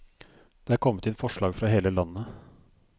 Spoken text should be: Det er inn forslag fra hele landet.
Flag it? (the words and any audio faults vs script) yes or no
yes